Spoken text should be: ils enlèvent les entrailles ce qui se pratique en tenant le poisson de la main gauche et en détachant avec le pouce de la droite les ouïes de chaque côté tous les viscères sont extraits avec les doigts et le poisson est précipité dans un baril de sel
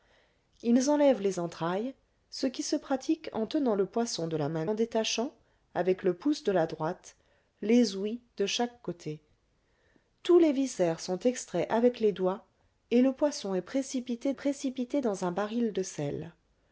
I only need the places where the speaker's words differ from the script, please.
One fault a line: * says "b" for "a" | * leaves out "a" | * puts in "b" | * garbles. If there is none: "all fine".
* leaves out "gauche et"
* puts in "précipité"